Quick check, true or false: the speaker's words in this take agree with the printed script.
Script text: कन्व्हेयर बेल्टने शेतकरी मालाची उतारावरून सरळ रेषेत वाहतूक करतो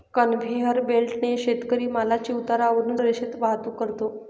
false